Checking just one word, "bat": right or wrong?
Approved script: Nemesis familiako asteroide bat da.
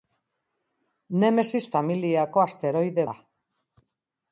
wrong